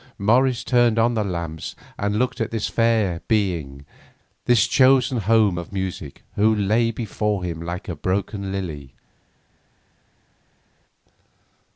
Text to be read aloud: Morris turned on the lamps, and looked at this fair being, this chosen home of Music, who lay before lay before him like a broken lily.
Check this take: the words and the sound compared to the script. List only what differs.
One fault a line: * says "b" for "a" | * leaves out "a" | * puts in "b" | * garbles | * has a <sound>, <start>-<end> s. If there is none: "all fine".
* leaves out "lay before"